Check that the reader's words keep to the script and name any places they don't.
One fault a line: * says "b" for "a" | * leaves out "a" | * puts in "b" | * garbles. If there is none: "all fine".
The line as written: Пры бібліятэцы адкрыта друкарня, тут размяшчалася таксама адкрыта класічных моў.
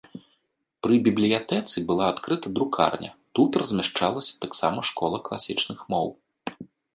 * puts in "была"
* says "школа" for "адкрыта"